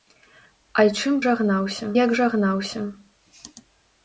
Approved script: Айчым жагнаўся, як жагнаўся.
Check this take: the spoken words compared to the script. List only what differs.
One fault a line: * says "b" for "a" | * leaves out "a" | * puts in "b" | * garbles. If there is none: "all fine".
all fine